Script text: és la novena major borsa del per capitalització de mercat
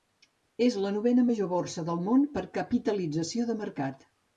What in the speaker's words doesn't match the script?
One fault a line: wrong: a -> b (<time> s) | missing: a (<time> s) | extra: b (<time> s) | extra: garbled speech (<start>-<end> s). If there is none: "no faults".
extra: món (2.1 s)